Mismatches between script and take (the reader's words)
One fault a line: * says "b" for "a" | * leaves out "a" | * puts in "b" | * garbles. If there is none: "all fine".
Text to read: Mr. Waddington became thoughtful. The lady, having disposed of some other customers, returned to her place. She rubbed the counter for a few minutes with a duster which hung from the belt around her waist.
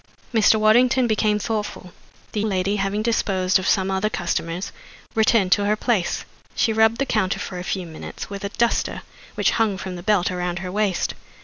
all fine